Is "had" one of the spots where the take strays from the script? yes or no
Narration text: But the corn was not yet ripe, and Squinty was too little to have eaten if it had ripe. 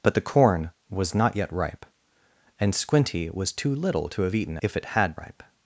no